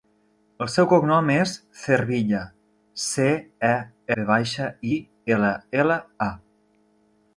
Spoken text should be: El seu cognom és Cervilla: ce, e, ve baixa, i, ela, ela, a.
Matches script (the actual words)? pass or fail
pass